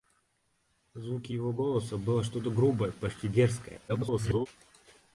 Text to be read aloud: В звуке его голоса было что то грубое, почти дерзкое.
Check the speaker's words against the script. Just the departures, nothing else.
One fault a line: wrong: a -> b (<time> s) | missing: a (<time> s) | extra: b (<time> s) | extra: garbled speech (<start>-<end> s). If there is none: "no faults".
extra: garbled speech (3.9-4.5 s)